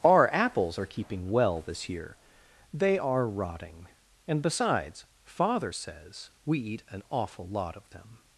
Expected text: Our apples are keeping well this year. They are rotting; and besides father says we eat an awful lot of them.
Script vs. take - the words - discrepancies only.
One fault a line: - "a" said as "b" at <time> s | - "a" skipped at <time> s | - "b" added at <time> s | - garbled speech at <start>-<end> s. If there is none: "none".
none